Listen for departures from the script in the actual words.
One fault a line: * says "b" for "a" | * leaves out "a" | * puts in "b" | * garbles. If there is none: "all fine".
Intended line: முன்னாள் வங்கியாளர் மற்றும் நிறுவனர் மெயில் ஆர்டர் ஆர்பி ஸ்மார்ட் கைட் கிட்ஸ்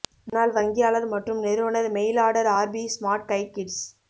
all fine